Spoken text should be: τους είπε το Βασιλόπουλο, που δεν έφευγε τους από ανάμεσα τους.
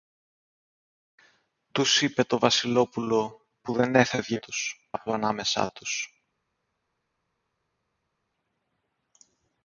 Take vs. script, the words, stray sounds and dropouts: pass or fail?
pass